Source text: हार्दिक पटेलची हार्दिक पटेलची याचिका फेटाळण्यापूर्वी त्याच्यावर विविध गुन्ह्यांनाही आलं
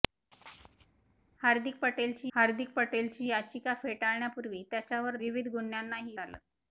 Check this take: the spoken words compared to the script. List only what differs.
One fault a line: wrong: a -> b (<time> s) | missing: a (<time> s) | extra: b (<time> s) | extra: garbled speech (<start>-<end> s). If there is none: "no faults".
no faults